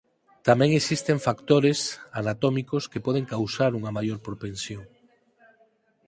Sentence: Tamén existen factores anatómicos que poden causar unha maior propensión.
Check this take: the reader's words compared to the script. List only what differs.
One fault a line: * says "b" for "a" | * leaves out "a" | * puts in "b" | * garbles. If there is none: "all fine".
all fine